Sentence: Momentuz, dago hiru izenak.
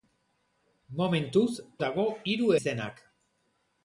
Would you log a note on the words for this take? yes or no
no